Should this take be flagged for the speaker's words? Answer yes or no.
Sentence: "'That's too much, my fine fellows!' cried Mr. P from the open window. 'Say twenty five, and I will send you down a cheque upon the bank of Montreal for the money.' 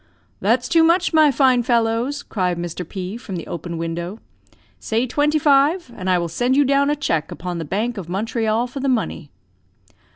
no